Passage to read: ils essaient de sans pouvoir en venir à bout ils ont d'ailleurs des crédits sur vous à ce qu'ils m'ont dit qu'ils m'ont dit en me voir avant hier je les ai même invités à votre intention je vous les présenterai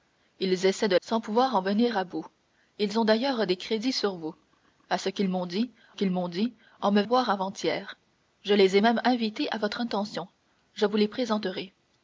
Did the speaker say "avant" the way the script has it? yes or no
yes